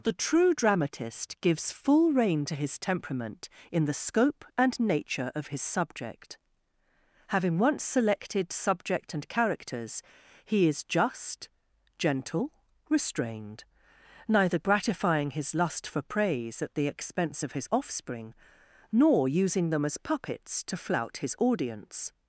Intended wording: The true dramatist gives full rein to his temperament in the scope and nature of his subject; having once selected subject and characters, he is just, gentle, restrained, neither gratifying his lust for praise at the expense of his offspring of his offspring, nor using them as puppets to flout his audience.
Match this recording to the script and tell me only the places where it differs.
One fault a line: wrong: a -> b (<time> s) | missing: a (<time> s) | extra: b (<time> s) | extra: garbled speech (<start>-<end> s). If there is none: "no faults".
missing: of his offspring (18.3 s)